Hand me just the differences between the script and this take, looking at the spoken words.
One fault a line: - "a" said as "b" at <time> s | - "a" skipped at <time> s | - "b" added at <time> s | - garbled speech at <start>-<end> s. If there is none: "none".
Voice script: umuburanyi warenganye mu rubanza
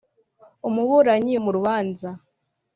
- "warenganye" skipped at 1.3 s